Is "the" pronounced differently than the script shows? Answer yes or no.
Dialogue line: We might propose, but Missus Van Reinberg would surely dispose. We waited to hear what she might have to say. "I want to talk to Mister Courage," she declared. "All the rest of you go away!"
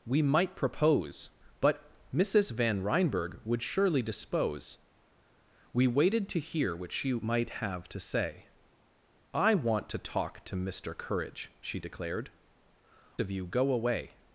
yes